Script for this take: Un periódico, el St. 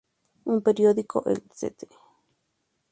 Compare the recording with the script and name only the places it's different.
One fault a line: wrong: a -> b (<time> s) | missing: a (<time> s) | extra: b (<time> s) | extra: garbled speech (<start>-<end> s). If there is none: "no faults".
no faults